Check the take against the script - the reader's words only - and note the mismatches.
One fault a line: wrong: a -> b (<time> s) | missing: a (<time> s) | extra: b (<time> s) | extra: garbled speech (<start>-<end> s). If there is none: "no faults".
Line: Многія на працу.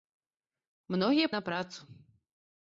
no faults